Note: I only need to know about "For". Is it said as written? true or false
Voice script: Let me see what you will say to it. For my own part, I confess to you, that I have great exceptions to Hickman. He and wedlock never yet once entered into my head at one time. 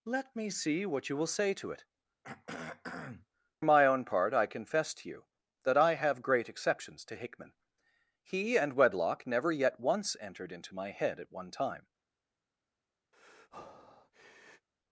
false